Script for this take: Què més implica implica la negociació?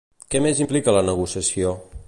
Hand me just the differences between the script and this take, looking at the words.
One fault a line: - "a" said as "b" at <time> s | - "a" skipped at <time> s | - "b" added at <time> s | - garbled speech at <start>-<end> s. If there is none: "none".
- "implica" skipped at 0.9 s